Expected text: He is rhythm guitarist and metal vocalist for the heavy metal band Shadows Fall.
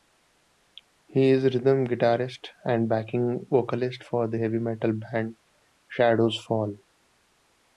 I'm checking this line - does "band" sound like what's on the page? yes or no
yes